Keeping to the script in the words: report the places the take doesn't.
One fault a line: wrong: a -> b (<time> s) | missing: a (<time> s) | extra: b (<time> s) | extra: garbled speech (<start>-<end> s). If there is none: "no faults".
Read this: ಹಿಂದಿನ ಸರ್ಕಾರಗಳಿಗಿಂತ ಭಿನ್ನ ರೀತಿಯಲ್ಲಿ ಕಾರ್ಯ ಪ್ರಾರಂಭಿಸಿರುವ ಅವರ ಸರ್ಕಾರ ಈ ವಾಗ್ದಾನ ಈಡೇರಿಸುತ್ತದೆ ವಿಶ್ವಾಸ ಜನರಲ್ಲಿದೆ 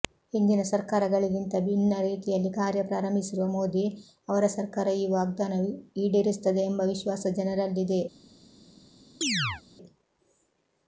extra: ಮೋದಿ (3.5 s)
extra: ಎಂಬ (6.6 s)